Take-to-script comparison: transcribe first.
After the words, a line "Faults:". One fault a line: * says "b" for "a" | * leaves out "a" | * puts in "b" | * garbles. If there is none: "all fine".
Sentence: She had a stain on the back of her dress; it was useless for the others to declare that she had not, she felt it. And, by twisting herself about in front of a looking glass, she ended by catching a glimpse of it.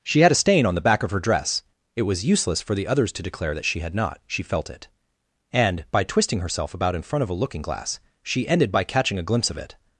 She had a stain on the back of her dress; it was useless for the others to declare that she had not, she felt it. And, by twisting herself about in front of a looking glass, she ended by catching a glimpse of it.
Faults:
all fine